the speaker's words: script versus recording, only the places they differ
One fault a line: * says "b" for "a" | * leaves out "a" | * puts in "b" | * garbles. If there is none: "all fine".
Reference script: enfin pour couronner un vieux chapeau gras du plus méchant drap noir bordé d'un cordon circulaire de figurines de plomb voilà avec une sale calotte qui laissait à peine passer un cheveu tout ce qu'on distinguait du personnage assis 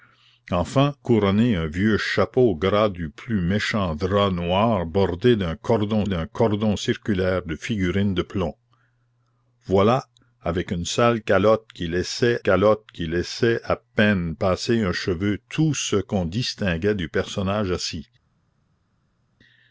* leaves out "pour"
* puts in "d'un cordon"
* puts in "calotte qui laissait"